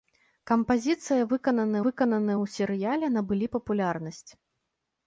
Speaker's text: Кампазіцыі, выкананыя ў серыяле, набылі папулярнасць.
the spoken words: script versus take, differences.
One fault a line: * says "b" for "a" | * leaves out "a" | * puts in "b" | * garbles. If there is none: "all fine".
* puts in "выкананыя"